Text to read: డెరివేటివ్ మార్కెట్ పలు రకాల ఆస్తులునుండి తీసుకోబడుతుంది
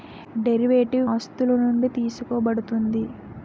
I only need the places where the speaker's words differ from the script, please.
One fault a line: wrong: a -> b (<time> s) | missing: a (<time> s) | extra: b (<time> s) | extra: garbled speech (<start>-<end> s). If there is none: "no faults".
missing: మార్కెట్ పలు రకాల (1.1 s)